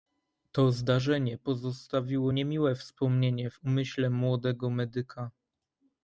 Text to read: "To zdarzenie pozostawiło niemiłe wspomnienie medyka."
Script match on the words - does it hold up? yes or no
no